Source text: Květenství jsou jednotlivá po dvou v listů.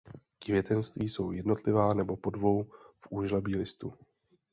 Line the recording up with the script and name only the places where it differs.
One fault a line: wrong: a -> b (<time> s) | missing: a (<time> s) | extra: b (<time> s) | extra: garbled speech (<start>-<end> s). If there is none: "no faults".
extra: nebo (1.9 s)
extra: úžlabí (3.1 s)